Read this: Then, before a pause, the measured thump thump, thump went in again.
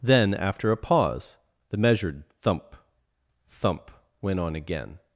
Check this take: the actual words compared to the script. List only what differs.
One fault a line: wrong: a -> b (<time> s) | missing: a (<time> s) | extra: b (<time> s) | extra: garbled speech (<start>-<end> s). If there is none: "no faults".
wrong: before -> after (0.3 s)
missing: thump (3.9 s)
wrong: in -> on (4.4 s)